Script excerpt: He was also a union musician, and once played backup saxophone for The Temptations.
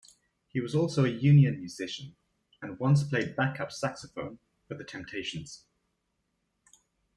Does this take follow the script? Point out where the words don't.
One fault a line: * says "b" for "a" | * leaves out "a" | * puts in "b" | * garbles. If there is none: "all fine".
all fine